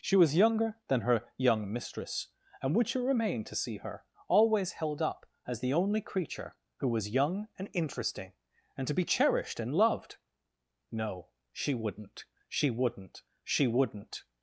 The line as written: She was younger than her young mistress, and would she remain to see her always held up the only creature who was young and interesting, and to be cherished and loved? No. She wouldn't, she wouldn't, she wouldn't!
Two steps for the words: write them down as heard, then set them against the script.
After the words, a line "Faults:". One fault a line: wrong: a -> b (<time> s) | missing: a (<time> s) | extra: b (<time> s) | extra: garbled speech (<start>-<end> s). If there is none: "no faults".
She was younger than her young mistress, and would she remain to see her always held up as the only creature who was young and interesting, and to be cherished and loved? No. She wouldn't, she wouldn't, she wouldn't!
Faults:
extra: as (5.5 s)